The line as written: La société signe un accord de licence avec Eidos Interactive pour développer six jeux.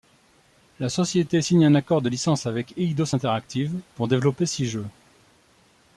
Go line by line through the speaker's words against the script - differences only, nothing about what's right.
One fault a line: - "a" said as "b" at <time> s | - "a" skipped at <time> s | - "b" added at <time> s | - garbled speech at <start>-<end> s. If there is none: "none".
none